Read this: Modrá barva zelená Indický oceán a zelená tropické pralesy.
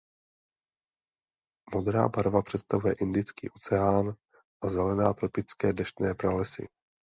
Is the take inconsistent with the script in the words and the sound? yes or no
yes